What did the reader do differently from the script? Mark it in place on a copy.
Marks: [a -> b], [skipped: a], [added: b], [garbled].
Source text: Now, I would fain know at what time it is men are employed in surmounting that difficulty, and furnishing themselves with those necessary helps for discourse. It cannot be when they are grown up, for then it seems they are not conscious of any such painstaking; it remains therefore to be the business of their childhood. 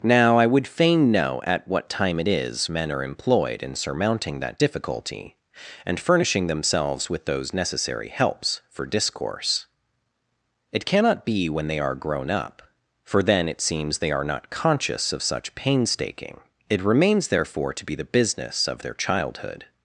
Now, I would fain know at what time it is men are employed in surmounting that difficulty, and furnishing themselves with those necessary helps for discourse. It cannot be when they are grown up, for then it seems they are not conscious of [skipped: any] such painstaking; it remains therefore to be the business of their childhood.